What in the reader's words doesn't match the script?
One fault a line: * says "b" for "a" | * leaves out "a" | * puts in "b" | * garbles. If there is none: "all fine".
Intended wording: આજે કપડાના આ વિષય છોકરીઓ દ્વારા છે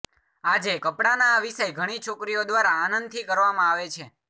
* puts in "ઘણી"
* puts in "આનંદથી કરવામાં આવે"